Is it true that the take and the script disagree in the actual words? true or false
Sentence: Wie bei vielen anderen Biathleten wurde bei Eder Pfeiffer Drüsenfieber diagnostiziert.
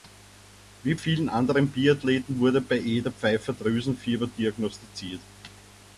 true